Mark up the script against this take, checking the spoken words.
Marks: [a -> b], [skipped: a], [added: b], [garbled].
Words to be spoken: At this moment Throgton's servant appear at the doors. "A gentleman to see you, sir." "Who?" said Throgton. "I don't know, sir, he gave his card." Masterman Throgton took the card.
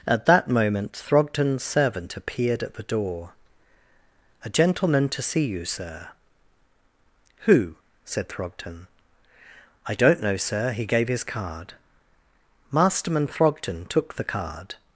At [this -> that] moment Throgton's servant [appear -> appeared] at the [doors. -> door] "A gentleman to see you, sir." "Who?" said Throgton. "I don't know, sir, he gave his card." Masterman Throgton took the card.